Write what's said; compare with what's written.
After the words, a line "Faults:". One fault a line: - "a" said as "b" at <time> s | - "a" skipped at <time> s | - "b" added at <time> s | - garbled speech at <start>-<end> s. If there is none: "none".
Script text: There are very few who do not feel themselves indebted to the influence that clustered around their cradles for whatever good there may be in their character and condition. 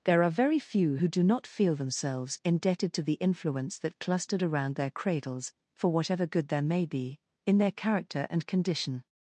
There are very few who do not feel themselves indebted to the influence that clustered around their cradles for whatever good there may be in their character and condition.
Faults:
none